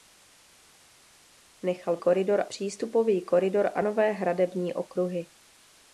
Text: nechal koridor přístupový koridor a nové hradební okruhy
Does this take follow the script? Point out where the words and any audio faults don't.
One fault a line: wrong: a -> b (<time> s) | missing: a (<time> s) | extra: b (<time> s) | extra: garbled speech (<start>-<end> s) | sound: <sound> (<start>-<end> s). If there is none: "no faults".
no faults